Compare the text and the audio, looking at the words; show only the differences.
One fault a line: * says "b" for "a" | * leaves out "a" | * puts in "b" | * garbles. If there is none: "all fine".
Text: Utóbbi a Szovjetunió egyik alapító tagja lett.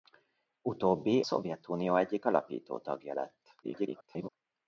* leaves out "a"
* garbles